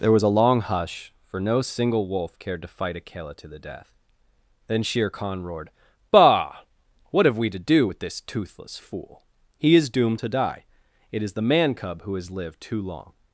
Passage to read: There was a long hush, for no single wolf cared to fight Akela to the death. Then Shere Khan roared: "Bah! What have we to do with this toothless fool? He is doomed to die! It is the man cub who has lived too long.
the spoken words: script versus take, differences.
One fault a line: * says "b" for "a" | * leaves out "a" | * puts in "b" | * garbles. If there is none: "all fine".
all fine